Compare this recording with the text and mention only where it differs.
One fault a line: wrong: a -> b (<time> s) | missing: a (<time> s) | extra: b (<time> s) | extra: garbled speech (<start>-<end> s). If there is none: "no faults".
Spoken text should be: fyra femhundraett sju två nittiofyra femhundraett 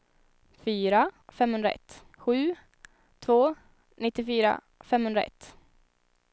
no faults